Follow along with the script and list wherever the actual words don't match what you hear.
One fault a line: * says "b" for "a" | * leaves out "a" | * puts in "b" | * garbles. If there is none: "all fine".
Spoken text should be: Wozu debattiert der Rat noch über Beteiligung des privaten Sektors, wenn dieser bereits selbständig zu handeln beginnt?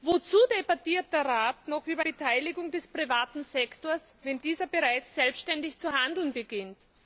all fine